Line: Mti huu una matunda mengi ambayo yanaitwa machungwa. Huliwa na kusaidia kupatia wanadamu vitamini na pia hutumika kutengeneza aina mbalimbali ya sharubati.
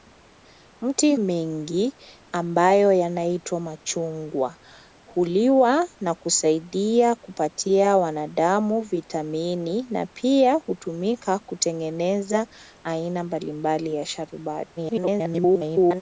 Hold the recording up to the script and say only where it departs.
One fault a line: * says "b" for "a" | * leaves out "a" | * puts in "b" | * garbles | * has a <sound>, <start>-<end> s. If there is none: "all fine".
* leaves out "huu una matunda"
* garbles